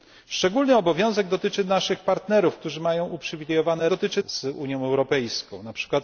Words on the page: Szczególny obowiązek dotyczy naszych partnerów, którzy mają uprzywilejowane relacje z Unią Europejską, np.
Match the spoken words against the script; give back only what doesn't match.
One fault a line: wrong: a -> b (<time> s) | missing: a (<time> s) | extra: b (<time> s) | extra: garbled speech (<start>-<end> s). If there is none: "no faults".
wrong: relacje -> dotyczy (3.9 s)